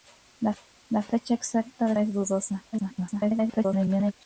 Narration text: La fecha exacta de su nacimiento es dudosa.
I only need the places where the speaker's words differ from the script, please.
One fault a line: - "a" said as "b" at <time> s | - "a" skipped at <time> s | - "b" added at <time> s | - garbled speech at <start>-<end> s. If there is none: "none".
- "su nacimiento" skipped at 1.9 s
- garbled speech at 2.7-4.1 s